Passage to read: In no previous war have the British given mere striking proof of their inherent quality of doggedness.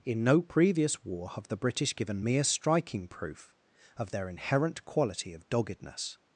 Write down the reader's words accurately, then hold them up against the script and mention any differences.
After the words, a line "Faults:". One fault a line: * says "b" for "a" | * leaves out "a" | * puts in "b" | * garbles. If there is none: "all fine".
In no previous war have the British given mere striking proof of their inherent quality of doggedness.
Faults:
all fine